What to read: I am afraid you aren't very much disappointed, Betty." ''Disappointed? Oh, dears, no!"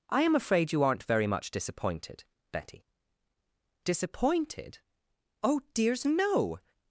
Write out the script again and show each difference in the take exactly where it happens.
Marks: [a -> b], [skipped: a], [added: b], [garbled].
I am afraid you aren't very much disappointed, Betty." ''Disappointed? Oh, dears, no!"